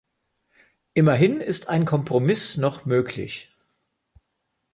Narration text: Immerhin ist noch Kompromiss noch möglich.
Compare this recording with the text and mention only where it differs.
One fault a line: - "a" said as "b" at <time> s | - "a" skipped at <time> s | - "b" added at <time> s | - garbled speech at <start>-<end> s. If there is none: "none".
- "noch" said as "ein" at 1.7 s